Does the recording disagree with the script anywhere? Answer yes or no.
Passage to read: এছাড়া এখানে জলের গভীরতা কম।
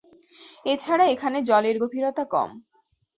no